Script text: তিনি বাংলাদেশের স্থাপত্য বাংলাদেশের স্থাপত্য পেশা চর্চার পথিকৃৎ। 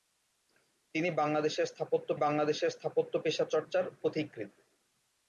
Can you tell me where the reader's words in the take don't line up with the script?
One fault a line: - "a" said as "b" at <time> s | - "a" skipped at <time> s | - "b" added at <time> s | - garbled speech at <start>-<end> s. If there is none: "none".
none